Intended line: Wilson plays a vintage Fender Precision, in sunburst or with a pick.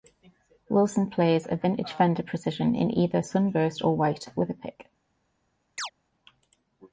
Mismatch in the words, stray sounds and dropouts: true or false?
true